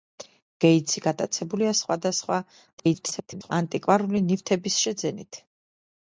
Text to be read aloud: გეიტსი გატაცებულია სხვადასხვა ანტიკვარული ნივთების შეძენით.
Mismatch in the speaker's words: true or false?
true